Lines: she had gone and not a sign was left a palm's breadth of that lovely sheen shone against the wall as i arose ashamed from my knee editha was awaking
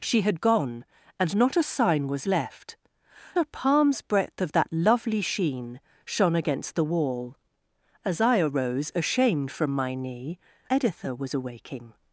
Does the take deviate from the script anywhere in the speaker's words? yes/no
no